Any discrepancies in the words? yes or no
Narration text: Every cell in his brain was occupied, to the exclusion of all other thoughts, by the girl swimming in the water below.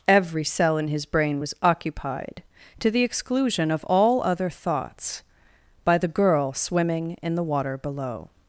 no